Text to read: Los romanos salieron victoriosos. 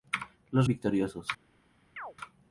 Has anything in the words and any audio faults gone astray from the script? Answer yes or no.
yes